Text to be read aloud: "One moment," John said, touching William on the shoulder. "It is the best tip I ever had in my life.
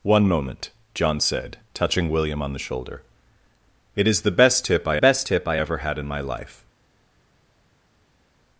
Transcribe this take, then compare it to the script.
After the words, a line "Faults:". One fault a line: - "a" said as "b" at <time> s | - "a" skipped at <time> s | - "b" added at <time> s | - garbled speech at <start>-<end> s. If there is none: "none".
"One moment," John said, touching William on the shoulder. "It is the best tip I best tip I ever had in my life.
Faults:
- "best tip I" added at 5.0 s